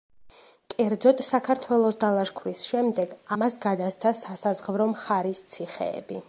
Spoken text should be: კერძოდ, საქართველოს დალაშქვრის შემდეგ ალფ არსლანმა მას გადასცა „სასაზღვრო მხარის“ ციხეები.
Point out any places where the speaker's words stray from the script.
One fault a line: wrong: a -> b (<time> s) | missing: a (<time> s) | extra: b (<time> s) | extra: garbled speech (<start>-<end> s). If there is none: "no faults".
missing: ალფ არსლანმა (3.1 s)